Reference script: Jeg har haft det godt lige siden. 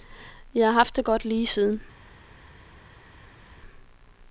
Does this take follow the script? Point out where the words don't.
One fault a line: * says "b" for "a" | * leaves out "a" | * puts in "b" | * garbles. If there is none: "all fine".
all fine